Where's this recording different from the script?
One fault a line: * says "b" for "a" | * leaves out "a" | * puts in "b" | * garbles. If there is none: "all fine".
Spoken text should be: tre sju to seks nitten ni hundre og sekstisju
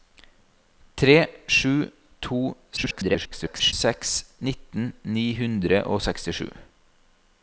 * garbles